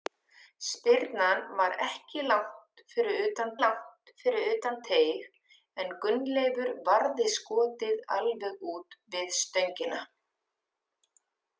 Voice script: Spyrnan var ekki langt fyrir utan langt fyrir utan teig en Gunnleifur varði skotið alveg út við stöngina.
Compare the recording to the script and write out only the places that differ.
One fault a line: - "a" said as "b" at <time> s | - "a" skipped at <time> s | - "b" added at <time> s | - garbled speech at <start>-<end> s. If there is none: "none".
none